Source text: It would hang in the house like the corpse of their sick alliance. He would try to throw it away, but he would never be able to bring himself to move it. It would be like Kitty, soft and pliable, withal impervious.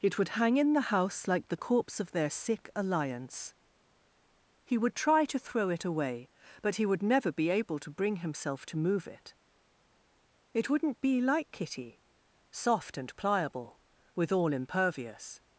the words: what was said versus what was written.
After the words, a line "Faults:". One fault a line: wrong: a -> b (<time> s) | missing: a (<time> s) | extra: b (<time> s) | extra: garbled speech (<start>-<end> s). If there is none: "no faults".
It would hang in the house like the corpse of their sick alliance. He would try to throw it away, but he would never be able to bring himself to move it. It wouldn't be like Kitty, soft and pliable, withal impervious.
Faults:
wrong: would -> wouldn't (10.7 s)